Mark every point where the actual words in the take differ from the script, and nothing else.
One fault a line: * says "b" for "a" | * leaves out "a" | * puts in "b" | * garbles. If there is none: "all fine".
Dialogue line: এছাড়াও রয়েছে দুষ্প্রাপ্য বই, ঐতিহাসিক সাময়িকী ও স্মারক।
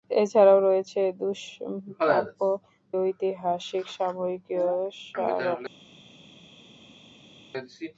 * leaves out "বই"